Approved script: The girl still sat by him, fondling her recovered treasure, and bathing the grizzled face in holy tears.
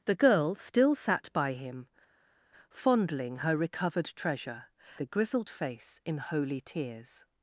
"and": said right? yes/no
no